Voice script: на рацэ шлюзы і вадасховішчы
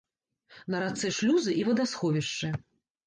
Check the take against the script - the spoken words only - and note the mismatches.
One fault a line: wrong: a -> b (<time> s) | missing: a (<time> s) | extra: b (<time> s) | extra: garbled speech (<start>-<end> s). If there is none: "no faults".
no faults